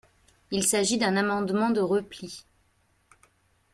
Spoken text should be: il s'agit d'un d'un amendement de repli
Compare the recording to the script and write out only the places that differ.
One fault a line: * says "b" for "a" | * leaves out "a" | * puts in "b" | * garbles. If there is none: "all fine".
* leaves out "d'un"